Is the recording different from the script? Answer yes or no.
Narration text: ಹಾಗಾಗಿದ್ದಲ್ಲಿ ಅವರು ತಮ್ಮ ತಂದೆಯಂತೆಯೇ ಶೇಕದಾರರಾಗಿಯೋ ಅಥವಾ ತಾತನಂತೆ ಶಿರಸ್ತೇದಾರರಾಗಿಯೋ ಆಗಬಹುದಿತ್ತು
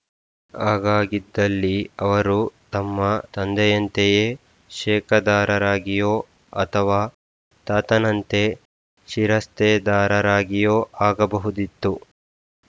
no